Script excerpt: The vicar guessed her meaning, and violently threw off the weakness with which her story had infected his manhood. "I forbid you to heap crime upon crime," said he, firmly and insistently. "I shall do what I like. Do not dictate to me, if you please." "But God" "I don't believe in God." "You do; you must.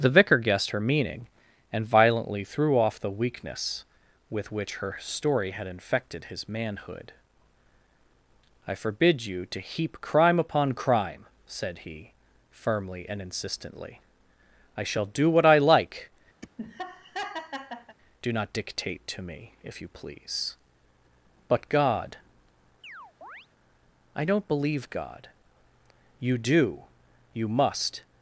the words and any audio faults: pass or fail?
fail